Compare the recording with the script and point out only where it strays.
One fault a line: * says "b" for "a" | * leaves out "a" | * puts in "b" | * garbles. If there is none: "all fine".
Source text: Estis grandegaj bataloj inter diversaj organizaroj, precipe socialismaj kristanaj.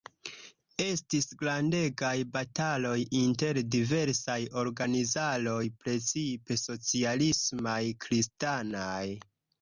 all fine